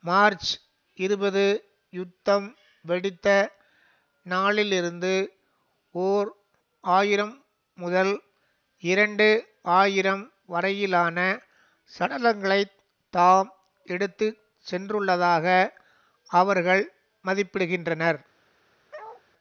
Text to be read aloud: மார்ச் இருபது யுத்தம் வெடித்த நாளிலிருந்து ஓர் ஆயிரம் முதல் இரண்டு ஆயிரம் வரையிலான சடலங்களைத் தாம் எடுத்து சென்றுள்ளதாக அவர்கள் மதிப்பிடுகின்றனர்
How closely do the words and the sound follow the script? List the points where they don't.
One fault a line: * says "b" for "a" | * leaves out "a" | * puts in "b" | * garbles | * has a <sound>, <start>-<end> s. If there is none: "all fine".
* has a bark, 18.9-19.2 s